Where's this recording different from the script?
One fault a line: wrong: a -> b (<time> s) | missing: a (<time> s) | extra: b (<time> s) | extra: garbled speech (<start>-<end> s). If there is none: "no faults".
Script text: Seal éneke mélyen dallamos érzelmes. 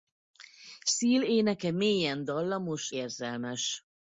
no faults